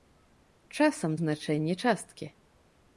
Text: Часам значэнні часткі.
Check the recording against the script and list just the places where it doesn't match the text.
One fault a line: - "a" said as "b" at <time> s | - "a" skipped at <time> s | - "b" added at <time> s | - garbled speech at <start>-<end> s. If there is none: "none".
none